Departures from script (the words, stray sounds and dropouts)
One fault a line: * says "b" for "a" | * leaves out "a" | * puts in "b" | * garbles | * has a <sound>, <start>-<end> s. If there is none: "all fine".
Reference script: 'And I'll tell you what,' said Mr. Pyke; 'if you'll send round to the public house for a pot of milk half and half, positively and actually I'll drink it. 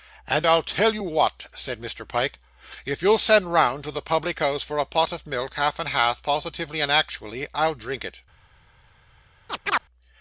* has a chirp, 9.5-9.8 s